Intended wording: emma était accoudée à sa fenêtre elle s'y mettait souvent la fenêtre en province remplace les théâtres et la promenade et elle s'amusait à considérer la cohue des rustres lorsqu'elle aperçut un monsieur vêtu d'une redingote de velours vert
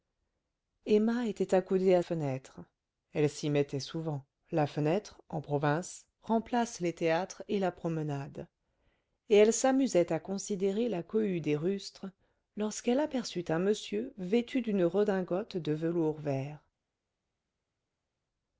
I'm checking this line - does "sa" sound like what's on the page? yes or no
no